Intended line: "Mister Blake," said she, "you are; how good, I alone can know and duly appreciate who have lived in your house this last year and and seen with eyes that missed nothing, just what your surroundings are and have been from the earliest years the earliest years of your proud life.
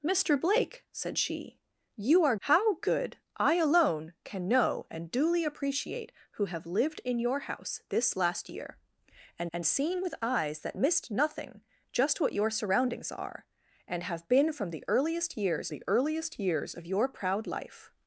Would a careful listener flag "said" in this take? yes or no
no